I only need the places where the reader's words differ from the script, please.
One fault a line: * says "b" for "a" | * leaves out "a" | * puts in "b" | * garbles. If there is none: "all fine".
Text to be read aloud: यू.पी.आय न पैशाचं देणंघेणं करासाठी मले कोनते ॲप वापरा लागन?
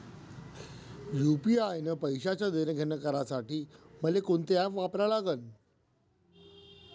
all fine